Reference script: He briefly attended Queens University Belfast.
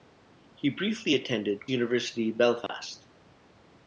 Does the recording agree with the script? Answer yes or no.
no